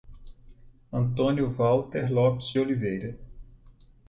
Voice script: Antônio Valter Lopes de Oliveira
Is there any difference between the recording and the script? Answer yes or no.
yes